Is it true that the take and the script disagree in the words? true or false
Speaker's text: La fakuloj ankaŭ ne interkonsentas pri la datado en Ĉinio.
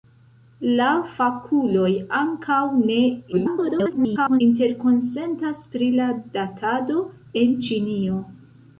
true